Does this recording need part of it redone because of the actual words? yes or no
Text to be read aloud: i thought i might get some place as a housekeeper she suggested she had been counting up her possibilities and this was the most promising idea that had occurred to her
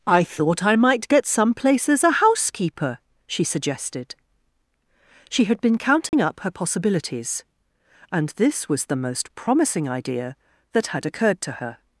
no